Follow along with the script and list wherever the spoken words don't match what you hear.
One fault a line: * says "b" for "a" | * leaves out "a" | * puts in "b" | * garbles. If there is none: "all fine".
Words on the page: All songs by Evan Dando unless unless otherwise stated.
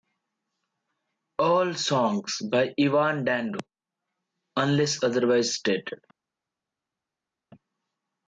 * leaves out "unless"